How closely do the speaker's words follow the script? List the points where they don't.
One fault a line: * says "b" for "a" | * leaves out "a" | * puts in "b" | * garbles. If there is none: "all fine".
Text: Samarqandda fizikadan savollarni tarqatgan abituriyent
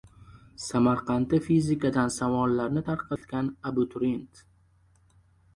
all fine